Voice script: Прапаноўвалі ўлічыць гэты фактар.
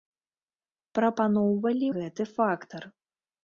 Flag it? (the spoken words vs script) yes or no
yes